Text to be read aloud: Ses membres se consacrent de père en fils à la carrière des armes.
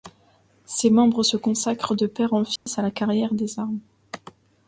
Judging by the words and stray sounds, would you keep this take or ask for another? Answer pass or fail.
fail